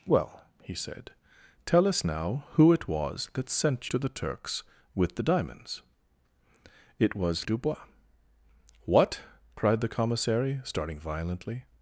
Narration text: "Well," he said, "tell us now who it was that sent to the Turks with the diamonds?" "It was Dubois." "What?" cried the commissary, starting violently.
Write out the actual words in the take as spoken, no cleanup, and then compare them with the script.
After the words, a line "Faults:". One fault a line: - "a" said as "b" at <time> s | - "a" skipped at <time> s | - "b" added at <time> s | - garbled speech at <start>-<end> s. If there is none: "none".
"Well," he said, "tell us now who it was that sent to the Turks with the diamonds?" "It was Dubois." "What?" cried the commissary, starting violently.
Faults:
none